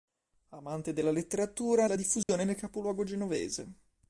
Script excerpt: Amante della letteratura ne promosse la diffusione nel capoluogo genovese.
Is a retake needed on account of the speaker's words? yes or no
yes